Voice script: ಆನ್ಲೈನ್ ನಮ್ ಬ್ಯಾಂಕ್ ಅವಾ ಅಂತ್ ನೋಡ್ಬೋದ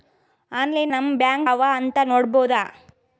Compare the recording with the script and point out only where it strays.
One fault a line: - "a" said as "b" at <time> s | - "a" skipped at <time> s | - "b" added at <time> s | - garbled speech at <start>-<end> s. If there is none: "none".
none